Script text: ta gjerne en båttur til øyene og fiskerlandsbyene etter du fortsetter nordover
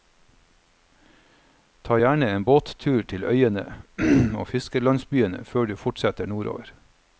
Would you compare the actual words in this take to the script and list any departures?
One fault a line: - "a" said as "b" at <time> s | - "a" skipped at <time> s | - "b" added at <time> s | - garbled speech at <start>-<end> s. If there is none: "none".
- "etter" said as "før" at 5.4 s